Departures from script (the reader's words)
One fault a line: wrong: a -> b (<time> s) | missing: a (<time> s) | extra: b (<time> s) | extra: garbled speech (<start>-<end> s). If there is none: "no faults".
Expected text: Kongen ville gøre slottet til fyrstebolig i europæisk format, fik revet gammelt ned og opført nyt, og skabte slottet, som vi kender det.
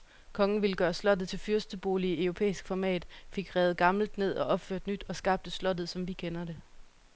no faults